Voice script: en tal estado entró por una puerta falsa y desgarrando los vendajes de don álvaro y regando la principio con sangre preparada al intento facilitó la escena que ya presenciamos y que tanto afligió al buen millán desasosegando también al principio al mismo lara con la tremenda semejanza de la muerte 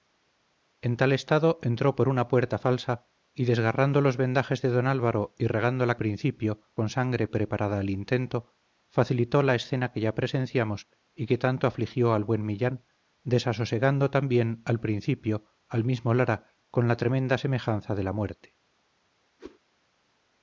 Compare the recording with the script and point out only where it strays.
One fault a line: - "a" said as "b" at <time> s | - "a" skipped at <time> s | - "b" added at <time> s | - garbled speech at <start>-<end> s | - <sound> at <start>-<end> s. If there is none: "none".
- whoosh at 19.4-19.6 s